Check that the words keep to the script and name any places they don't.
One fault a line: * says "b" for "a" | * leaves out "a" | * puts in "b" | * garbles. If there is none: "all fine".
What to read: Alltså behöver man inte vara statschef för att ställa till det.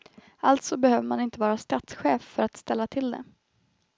all fine